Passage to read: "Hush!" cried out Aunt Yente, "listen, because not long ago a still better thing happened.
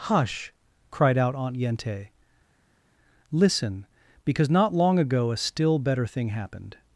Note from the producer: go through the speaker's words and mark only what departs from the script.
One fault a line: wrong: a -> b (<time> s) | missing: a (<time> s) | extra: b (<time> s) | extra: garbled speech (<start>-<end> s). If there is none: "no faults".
no faults